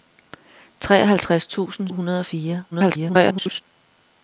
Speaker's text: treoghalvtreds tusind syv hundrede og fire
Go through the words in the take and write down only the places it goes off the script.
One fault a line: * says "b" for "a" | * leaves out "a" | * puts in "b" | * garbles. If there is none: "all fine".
* leaves out "syv"
* garbles